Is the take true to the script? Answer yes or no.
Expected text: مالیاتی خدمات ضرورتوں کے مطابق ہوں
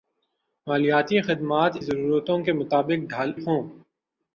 yes